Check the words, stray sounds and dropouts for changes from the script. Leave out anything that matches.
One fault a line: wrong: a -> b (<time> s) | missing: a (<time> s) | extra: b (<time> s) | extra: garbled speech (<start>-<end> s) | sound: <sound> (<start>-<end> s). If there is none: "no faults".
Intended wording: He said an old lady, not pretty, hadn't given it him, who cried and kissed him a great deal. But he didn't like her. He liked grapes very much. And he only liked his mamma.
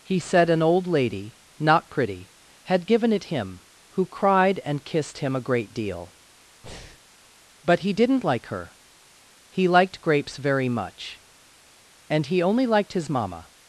wrong: hadn't -> had (2.6 s)
sound: breath (6.6-7.0 s)